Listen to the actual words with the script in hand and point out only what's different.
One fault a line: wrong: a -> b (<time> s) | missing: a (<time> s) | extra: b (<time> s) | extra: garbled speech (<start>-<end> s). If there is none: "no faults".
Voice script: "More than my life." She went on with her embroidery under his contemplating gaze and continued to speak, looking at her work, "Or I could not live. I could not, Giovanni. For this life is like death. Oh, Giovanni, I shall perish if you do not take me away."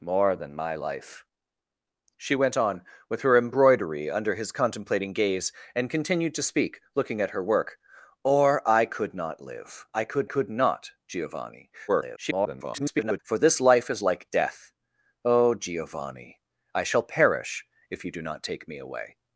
extra: could (10.3 s)
extra: garbled speech (11.9-13.2 s)